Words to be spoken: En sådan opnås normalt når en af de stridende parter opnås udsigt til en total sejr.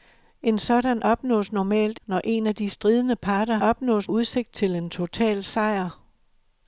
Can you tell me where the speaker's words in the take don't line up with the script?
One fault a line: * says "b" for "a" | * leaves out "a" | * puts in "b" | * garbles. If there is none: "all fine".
all fine